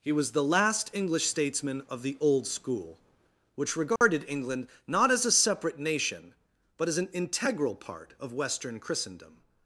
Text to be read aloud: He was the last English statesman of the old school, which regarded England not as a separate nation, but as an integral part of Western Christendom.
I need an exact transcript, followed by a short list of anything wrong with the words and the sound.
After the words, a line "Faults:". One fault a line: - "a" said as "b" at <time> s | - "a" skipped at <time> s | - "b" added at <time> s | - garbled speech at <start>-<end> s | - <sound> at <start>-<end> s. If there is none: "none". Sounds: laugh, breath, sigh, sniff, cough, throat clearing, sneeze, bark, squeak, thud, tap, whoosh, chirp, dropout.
He was the last English statesman of the old school, which regarded England not as a separate nation, but as an integral part of Western Christendom.
Faults:
- dropout at 4.0-4.0 s